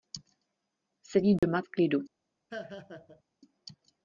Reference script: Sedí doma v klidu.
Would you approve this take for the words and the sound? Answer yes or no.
no